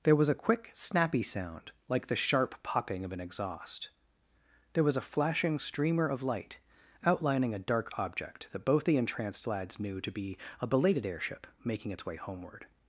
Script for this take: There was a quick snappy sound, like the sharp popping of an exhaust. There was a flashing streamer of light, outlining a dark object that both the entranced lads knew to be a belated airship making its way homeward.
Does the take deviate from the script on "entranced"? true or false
false